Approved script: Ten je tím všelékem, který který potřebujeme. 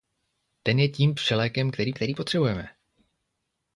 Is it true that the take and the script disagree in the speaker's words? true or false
false